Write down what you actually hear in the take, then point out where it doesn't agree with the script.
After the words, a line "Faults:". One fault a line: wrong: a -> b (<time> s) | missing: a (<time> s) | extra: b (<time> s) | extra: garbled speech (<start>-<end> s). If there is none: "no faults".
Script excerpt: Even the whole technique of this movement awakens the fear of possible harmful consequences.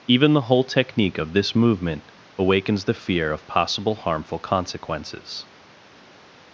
Even the whole technique of this movement awakens the fear of possible harmful consequences.
Faults:
no faults